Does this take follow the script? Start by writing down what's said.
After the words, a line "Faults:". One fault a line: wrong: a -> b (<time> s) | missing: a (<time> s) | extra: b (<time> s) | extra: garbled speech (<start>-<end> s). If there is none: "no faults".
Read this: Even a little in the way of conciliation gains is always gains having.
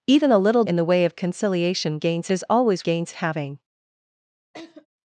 Even a little in the way of conciliation gains is always gains having.
Faults:
no faults